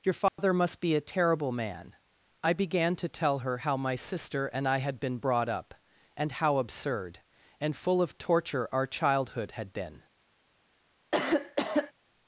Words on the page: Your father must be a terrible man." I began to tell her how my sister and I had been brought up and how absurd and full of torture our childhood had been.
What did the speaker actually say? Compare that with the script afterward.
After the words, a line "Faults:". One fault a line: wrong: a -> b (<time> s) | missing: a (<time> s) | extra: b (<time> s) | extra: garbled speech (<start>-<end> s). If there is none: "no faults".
Your father must be a terrible man." I began to tell her how my sister and I had been brought up and how absurd and full of torture our childhood had been.
Faults:
no faults